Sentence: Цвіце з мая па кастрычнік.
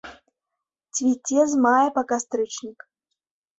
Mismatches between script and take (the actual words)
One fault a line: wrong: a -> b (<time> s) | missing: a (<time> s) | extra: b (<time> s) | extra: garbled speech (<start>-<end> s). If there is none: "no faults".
no faults